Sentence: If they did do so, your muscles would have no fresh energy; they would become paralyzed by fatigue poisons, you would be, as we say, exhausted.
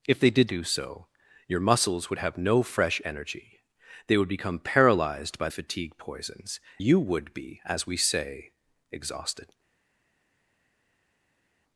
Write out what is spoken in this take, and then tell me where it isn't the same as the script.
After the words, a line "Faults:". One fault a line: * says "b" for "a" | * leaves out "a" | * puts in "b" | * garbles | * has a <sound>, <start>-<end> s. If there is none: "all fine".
If they did do so, your muscles would have no fresh energy; they would become paralyzed by fatigue poisons, you would be, as we say, exhausted.
Faults:
all fine